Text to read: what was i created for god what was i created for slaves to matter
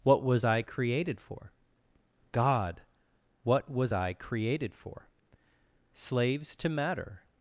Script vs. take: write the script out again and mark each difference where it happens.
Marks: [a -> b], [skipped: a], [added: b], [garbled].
what was i created for god what was i created for slaves to matter